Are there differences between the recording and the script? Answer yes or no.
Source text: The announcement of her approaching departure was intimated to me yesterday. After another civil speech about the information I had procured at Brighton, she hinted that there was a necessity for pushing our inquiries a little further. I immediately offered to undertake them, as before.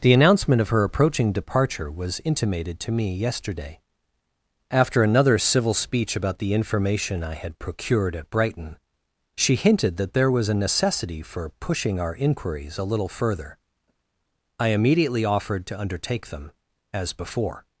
no